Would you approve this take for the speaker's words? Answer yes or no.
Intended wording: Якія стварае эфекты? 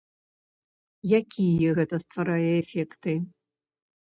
no